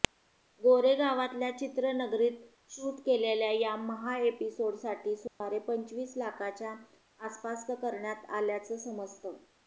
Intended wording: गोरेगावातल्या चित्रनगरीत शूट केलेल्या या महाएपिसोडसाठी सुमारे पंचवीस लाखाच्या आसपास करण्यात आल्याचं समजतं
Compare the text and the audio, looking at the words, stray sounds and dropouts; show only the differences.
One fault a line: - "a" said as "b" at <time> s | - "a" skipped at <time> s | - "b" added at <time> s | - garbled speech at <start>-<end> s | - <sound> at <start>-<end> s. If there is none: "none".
- dropout at 5.3-5.4 s